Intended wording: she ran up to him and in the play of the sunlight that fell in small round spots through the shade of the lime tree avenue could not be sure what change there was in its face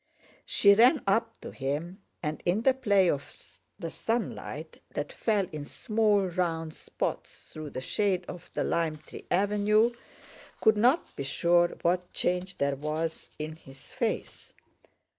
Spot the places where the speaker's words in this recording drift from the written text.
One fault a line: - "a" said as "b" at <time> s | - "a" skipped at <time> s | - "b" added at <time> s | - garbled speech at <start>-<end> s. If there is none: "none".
- "its" said as "his" at 13.6 s